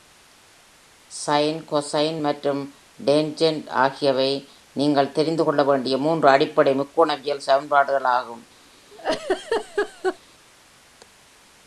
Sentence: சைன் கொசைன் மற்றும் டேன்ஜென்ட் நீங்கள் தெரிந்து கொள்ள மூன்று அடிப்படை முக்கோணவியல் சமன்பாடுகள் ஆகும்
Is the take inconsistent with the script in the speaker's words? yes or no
yes